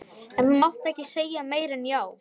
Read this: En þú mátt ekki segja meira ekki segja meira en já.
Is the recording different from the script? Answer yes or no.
yes